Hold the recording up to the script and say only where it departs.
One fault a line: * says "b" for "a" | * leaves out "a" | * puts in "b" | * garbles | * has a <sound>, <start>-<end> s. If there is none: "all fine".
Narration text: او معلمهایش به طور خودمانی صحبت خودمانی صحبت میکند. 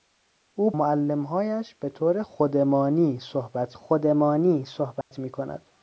* has a dropout, 5.0-5.1 s